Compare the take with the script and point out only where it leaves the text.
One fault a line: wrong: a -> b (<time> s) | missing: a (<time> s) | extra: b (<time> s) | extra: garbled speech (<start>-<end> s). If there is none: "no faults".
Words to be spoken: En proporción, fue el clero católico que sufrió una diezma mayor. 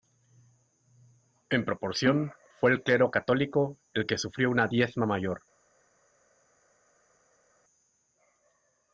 extra: el (3.9 s)